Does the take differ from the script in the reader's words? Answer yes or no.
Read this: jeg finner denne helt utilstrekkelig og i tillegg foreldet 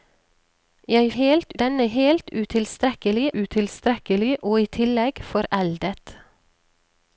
yes